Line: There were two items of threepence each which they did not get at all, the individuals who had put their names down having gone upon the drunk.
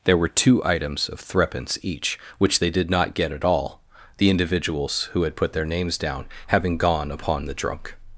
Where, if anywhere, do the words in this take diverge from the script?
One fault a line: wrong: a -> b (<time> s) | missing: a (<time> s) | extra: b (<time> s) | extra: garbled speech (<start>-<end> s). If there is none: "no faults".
no faults